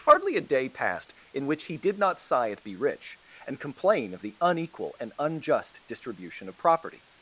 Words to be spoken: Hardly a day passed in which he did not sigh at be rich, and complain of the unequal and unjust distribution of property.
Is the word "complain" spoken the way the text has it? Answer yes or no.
yes